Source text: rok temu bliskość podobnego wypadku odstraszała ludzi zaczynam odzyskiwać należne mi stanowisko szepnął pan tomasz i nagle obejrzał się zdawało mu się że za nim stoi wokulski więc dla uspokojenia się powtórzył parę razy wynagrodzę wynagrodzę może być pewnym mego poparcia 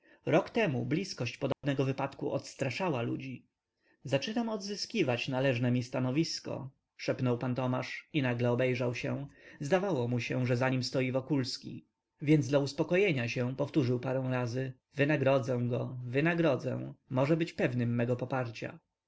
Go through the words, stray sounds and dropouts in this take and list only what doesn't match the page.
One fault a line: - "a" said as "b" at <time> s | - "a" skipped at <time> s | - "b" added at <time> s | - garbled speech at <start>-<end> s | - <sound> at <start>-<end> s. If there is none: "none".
- dropout at 1.5-1.6 s
- "go" added at 15.7 s